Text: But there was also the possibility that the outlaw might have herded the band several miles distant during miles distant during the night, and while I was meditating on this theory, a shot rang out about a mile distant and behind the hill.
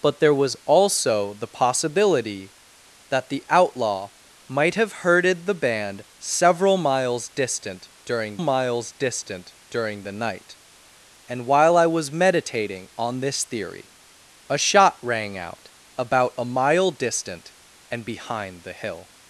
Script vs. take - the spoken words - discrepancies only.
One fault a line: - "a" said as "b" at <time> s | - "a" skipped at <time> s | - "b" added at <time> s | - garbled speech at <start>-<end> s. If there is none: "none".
none